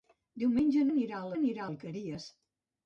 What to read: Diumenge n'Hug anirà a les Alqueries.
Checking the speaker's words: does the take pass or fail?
fail